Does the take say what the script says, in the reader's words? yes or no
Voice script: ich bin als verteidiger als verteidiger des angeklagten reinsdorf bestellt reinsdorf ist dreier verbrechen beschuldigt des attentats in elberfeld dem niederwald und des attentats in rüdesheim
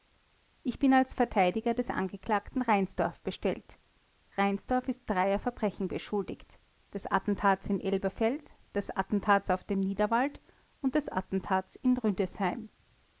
no